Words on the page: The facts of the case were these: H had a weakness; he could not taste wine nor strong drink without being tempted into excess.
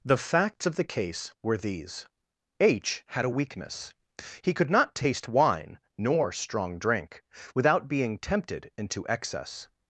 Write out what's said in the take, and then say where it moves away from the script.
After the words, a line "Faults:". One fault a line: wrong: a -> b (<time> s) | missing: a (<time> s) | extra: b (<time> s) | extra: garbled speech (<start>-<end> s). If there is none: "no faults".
The facts of the case were these: H had a weakness; he could not taste wine nor strong drink without being tempted into excess.
Faults:
no faults